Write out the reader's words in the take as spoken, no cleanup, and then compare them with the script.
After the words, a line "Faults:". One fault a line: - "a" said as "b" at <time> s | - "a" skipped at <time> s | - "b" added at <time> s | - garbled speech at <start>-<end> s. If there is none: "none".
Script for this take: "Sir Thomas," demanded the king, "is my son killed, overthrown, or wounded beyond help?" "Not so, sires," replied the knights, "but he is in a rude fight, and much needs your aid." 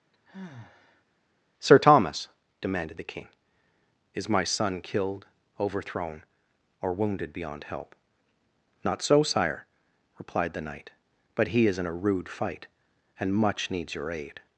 "Sir Thomas," demanded the king, "is my son killed, overthrown, or wounded beyond help?" "Not so, sire," replied the knight, "but he is in a rude fight, and much needs your aid."
Faults:
- "sires" said as "sire" at 9.2 s
- "knights" said as "knight" at 10.6 s